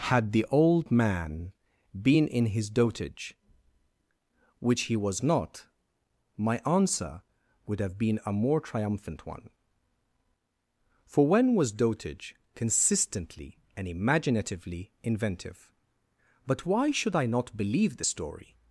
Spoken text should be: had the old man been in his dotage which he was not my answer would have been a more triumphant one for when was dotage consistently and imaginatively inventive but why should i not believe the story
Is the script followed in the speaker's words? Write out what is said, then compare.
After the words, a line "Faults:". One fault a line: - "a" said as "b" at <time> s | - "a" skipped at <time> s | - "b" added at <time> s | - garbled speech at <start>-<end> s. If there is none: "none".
had the old man been in his dotage which he was not my answer would have been a more triumphant one for when was dotage consistently and imaginatively inventive but why should i not believe the story
Faults:
none